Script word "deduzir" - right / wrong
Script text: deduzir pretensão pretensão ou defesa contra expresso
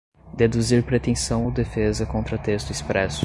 right